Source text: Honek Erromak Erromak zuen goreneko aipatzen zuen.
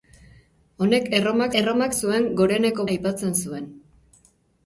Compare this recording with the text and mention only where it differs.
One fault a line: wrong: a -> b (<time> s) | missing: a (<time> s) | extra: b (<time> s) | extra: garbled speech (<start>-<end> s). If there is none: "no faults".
no faults